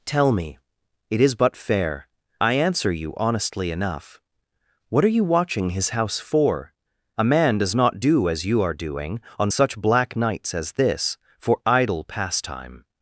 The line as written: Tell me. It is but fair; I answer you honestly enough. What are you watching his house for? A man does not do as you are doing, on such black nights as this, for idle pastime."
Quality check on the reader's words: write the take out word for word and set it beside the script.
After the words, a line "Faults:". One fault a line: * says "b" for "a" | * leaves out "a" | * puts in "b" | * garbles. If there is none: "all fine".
Tell me. It is but fair; I answer you honestly enough. What are you watching his house for? A man does not do as you are doing, on such black nights as this, for idle pastime."
Faults:
all fine